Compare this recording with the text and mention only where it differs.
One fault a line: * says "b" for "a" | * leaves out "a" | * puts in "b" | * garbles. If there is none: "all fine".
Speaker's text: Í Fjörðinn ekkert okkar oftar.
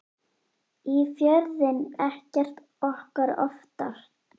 all fine